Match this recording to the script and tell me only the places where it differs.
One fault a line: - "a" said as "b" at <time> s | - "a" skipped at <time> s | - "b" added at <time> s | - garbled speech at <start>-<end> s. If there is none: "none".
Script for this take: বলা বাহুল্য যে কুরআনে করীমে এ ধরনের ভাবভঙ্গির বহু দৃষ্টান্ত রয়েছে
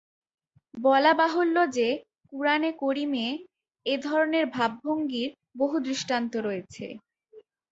none